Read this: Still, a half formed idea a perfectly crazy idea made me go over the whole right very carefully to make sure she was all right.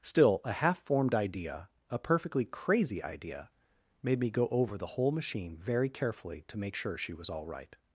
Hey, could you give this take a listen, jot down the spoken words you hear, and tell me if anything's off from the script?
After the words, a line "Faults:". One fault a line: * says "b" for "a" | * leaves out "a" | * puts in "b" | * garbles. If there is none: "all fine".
Still, a half formed idea a perfectly crazy idea made me go over the whole machine very carefully to make sure she was all right.
Faults:
* says "machine" for "right"